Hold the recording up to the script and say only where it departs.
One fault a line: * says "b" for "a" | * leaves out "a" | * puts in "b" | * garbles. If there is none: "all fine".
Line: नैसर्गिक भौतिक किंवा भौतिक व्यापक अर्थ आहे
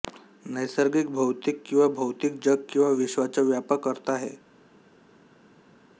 * puts in "जग किंवा विश्वाचा"